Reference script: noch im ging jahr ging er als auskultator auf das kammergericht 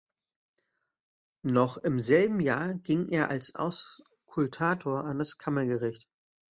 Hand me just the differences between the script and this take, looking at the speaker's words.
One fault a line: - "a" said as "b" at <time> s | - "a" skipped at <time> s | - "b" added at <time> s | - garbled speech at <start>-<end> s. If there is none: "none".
- "ging" said as "selben" at 2.0 s
- "auf" said as "an" at 5.0 s